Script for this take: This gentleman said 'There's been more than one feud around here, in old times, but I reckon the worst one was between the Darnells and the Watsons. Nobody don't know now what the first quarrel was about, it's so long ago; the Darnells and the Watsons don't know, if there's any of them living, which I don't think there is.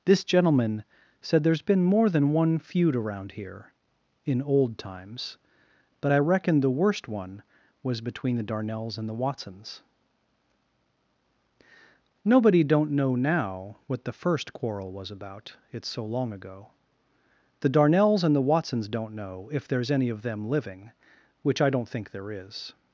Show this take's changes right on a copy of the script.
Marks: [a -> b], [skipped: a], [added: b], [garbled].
This gentleman said 'There's been more than one feud around here, in old times, but I reckon the worst one was between the Darnells and the Watsons. Nobody don't know now what the first quarrel was about, it's so long ago; the Darnells and the Watsons don't know, if there's any of them living, which I don't think there is.